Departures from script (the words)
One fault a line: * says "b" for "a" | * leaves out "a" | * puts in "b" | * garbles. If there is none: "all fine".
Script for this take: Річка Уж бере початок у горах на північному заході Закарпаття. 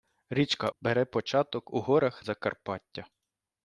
* leaves out "Уж"
* leaves out "на північному заході"